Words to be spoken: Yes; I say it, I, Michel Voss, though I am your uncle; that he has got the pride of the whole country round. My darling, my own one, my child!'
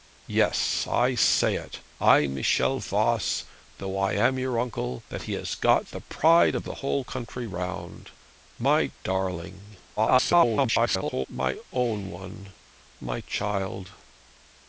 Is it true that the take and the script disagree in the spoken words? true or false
true